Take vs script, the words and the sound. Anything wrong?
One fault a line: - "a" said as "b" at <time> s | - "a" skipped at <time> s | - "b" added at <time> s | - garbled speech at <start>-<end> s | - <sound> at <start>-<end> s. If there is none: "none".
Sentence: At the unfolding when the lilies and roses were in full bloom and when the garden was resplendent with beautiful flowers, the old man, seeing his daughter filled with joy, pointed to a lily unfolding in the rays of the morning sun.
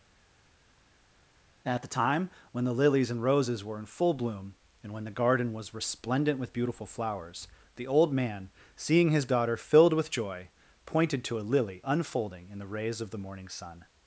- "unfolding" said as "time" at 1.9 s